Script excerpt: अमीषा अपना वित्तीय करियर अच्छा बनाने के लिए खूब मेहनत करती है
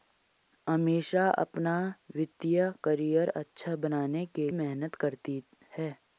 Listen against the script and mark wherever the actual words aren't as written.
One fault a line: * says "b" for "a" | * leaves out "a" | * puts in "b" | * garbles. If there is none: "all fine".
* leaves out "लिए खूब"